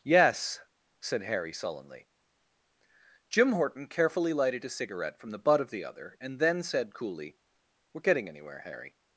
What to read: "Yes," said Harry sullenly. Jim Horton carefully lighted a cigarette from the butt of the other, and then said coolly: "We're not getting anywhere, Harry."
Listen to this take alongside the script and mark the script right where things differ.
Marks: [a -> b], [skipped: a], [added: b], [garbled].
"Yes," said Harry sullenly. Jim Horton carefully lighted a cigarette from the butt of the other, and then said coolly: "We're [skipped: not] getting anywhere, Harry."